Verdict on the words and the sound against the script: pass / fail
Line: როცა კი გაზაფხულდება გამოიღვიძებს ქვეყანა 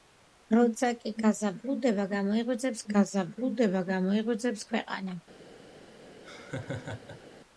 fail